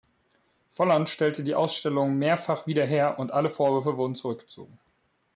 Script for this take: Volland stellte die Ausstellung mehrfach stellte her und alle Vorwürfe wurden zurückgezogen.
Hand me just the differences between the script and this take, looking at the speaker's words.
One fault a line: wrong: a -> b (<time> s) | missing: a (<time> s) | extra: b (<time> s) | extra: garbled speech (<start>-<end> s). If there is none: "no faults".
wrong: stellte -> wieder (2.6 s)